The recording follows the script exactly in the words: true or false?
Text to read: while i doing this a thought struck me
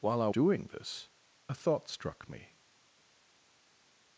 true